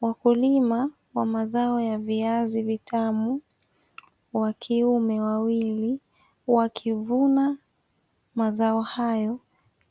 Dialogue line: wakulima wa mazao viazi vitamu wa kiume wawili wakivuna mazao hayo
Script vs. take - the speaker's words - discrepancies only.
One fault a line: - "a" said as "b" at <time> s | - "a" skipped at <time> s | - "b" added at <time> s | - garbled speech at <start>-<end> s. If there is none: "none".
- "ya" added at 1.8 s